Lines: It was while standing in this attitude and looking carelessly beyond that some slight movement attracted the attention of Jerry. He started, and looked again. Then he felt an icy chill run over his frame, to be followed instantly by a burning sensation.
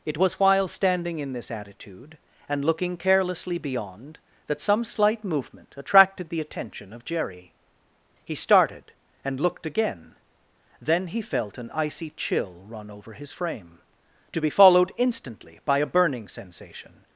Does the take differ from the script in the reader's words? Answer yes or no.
no